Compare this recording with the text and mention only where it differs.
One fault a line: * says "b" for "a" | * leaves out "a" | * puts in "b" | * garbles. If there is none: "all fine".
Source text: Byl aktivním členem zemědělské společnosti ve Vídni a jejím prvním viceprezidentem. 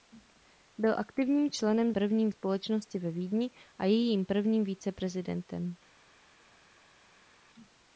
* says "prvním" for "zemědělské"